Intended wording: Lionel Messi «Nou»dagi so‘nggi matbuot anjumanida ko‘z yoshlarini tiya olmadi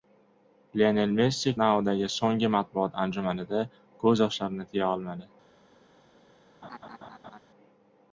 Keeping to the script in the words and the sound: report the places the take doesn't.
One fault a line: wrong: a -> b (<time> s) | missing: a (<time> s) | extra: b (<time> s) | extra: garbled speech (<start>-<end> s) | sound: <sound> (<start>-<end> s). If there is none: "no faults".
sound: laugh (6.6-7.4 s)